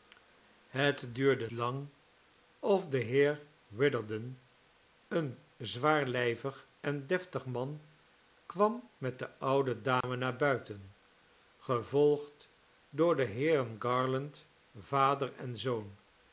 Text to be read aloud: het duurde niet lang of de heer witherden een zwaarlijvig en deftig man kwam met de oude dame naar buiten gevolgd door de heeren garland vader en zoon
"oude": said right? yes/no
yes